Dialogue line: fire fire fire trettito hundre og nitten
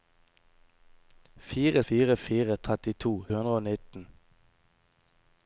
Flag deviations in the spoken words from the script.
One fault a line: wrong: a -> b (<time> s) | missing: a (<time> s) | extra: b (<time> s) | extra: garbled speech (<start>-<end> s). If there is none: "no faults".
no faults